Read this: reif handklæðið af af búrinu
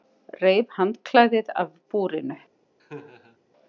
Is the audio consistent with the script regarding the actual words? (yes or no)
no